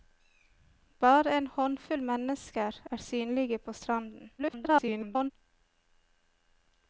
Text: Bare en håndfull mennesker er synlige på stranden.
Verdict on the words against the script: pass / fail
fail